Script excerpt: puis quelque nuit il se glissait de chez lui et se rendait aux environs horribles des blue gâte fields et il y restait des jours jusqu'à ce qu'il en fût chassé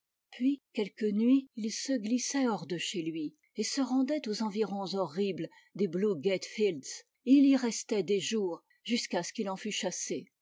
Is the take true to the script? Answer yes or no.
no